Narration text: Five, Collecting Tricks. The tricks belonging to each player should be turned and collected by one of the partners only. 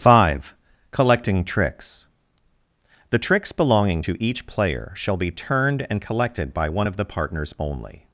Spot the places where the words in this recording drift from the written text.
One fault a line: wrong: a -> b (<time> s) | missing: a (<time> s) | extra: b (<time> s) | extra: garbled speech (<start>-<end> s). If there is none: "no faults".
wrong: should -> shall (4.9 s)